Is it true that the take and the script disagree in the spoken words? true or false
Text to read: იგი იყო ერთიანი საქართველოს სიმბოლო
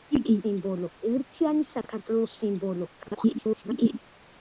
true